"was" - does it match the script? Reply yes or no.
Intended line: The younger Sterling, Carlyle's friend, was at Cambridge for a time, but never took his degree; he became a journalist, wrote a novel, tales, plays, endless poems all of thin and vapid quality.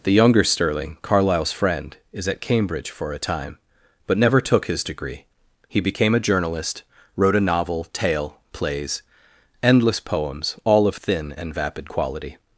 no